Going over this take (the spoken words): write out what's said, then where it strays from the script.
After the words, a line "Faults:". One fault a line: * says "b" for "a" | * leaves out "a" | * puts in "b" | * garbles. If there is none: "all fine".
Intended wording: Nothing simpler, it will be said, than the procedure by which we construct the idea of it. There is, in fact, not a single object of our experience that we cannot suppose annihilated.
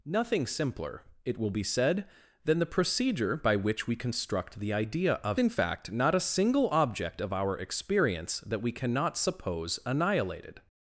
Nothing simpler, it will be said, than the procedure by which we construct the idea of in fact, not a single object of our experience that we cannot suppose annihilated.
Faults:
* leaves out "it There is"